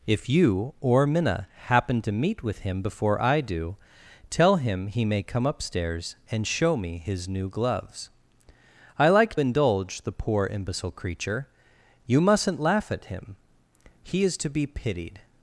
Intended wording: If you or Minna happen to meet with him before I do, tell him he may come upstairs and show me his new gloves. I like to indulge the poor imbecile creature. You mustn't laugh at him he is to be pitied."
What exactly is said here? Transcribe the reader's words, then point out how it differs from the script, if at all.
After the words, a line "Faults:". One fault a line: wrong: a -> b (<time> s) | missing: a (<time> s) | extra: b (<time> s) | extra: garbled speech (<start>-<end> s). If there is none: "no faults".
If you or Minna happen to meet with him before I do, tell him he may come upstairs and show me his new gloves. I like indulge the poor imbecile creature. You mustn't laugh at him he is to be pitied."
Faults:
missing: to (9.3 s)